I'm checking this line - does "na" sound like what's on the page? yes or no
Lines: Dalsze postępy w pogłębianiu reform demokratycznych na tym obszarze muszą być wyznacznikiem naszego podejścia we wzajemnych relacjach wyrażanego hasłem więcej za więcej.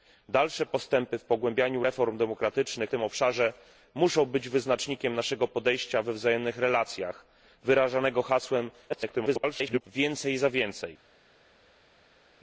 no